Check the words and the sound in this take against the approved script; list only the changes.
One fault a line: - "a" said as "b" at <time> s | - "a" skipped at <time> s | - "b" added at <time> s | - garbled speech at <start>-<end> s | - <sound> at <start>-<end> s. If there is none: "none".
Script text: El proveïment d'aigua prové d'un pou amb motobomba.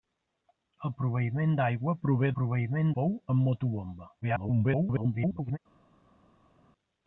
- "d'un" said as "proveïment" at 2.4 s
- garbled speech at 4.2-5.6 s